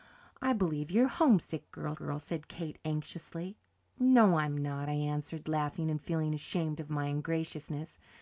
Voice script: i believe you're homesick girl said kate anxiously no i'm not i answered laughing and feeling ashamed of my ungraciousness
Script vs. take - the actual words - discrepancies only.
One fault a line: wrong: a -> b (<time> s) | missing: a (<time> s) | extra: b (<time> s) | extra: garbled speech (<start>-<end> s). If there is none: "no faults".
extra: girl (1.9 s)